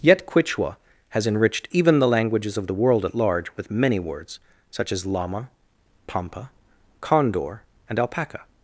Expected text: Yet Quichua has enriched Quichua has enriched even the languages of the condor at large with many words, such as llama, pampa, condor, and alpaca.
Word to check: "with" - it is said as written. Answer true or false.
true